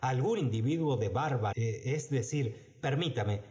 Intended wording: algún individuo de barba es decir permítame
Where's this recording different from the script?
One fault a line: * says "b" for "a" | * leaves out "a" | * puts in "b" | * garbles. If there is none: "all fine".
all fine